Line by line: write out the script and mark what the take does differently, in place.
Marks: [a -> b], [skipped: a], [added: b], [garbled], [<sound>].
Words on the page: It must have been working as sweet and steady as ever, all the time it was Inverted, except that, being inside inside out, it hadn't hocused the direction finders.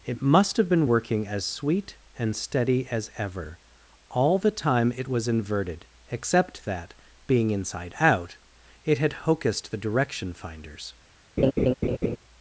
It must have been working as sweet and steady as ever, all the time it was Inverted, except that, being inside [skipped: inside] out, it [hadn't -> had] hocused the direction finders. [laugh]